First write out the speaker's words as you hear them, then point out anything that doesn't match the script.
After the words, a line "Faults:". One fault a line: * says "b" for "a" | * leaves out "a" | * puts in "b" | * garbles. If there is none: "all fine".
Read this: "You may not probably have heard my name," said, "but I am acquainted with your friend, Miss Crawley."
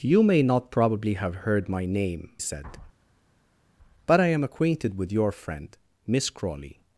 "You may not probably have heard my name," said, "but I am acquainted with your friend, Miss Crawley."
Faults:
all fine